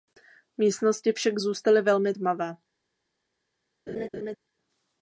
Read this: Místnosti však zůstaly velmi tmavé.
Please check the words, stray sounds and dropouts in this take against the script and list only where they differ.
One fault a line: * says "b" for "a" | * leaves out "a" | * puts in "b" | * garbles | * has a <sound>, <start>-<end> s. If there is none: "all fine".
* has a laugh, 3.9-4.4 s